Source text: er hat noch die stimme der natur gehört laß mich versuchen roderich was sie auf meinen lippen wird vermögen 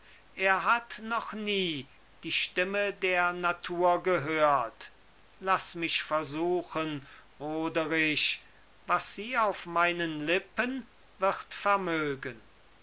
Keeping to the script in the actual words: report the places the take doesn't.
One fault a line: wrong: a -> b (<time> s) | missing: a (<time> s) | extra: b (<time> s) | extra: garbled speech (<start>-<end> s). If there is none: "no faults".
extra: nie (1.3 s)